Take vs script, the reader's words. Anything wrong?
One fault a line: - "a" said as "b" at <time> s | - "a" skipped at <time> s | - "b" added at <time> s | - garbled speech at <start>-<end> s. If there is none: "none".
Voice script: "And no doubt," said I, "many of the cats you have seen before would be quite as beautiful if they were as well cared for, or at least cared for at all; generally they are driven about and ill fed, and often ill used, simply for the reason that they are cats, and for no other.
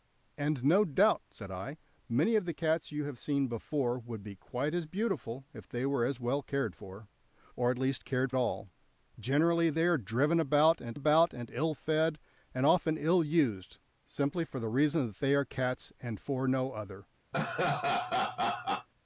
- "for" skipped at 8.3 s
- "about and" added at 10.9 s